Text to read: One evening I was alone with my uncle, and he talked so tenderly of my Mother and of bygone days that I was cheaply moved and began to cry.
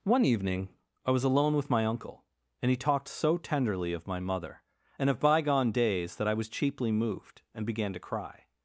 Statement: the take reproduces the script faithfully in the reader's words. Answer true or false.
true